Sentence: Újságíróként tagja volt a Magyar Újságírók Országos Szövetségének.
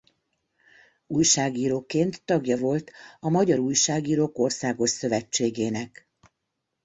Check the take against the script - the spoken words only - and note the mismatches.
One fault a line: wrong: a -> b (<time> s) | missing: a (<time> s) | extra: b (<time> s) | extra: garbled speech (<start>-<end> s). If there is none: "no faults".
no faults